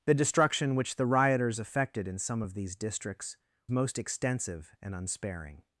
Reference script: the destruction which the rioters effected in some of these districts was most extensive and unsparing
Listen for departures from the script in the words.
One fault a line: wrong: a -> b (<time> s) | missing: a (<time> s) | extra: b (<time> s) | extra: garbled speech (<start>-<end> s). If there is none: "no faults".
missing: was (3.4 s)